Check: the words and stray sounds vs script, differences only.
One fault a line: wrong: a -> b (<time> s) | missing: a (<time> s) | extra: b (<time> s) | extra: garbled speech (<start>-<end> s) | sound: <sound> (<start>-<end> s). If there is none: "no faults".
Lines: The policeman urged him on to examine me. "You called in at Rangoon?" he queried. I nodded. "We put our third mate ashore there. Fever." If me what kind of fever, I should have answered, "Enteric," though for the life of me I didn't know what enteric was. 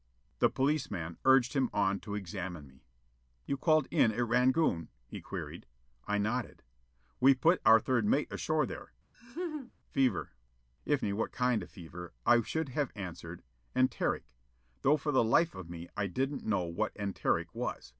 sound: laugh (9.1-9.7 s)